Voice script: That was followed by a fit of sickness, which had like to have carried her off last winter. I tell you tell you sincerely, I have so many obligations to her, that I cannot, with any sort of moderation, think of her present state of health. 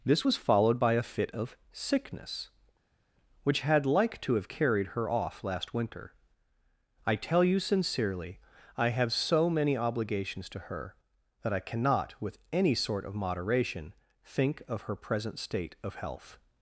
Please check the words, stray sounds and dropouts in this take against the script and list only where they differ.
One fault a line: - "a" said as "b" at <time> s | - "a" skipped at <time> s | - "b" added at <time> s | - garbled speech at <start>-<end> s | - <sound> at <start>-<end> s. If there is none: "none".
- "That" said as "This" at 0.0 s
- "tell you" skipped at 7.6 s